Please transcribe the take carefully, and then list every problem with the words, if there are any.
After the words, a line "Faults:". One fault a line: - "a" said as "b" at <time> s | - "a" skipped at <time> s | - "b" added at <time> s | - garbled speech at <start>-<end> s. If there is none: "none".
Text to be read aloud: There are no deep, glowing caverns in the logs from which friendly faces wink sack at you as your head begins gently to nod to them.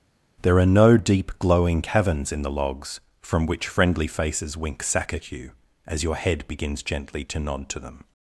There are no deep, glowing caverns in the logs from which friendly faces wink sack at you as your head begins gently to nod to them.
Faults:
none